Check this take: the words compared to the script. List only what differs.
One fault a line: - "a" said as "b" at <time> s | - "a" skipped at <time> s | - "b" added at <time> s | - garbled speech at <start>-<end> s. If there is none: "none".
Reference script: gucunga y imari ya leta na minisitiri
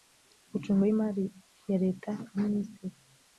none